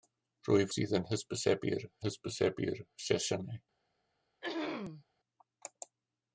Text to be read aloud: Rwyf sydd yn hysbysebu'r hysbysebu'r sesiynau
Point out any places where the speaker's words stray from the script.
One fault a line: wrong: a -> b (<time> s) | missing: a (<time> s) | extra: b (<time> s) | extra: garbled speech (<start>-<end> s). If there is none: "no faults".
no faults